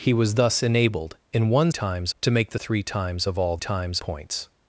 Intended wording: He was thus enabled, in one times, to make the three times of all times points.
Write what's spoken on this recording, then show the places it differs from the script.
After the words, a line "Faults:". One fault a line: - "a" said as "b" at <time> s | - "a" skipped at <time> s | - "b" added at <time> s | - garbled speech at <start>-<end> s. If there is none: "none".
He was thus enabled, in one times, to make the three times of all times points.
Faults:
none